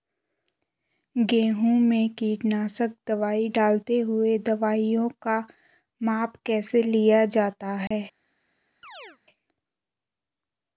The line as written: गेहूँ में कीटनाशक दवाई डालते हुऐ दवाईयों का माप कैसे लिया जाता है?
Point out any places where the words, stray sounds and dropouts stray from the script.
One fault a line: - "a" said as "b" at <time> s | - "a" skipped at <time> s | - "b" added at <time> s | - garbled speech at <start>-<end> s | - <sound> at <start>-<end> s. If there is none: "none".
- dropout at 7.9-7.9 s
- chirp at 8.8-9.2 s